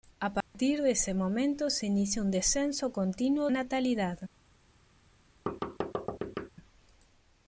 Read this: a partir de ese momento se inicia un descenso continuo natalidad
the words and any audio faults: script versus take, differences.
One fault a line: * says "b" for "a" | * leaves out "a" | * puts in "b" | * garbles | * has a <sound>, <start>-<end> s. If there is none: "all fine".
* has a dropout, 0.4-0.5 s
* has a thud, 5.5-6.5 s